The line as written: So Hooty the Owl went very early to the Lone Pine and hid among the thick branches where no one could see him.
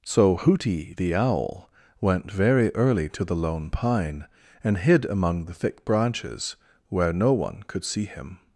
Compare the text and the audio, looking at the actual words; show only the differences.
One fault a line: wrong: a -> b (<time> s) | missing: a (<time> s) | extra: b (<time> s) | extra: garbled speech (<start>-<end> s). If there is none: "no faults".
no faults